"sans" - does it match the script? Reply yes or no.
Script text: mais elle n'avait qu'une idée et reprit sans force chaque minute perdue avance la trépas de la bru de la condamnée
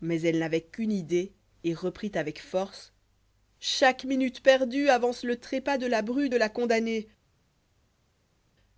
no